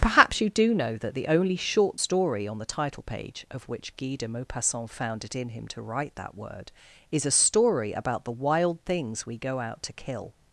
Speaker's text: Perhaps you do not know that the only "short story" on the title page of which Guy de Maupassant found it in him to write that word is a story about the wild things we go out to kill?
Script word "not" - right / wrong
wrong